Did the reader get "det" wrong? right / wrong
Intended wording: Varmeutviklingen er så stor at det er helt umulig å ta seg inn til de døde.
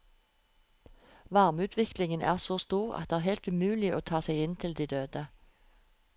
right